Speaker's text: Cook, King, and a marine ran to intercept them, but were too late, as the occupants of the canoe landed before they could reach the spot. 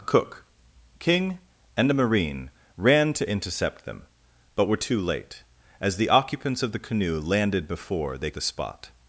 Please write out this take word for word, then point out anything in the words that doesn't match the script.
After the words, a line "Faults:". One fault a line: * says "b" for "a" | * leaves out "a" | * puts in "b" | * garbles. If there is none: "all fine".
Cook, King, and a marine ran to intercept them, but were too late, as the occupants of the canoe landed before they the spot.
Faults:
* leaves out "could reach"